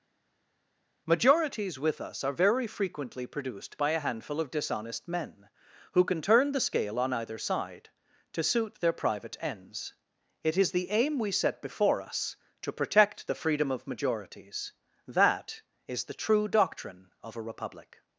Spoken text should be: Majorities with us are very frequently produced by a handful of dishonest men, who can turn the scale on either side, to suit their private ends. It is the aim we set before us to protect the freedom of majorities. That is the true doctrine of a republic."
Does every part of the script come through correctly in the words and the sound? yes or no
yes